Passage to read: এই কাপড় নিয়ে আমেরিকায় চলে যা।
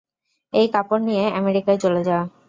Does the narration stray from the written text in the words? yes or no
no